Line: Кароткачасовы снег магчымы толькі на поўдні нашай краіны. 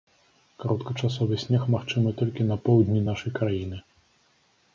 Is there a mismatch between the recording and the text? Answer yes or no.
no